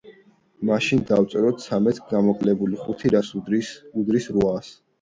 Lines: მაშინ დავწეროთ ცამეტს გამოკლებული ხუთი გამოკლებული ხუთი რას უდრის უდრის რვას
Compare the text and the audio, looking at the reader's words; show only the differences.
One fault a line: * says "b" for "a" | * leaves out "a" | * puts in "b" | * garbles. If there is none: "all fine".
* leaves out "გამოკლებული ხუთი"